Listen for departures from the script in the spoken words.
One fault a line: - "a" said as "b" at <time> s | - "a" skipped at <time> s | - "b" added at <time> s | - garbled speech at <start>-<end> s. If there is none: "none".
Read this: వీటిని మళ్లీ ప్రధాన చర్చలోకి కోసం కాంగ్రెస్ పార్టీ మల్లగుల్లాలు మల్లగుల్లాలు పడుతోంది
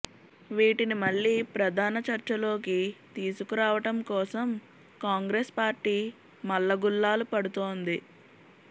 - "తీసుకురావటం" added at 3.1 s
- "మల్లగుల్లాలు" skipped at 7.3 s